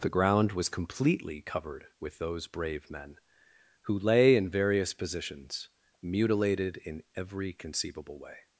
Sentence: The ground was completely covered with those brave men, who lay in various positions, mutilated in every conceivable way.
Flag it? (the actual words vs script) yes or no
no